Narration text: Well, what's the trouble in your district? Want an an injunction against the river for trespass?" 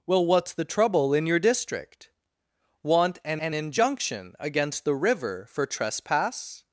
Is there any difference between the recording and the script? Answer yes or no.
no